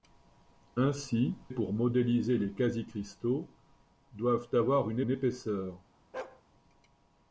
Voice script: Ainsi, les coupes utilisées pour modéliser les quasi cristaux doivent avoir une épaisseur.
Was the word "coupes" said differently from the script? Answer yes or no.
yes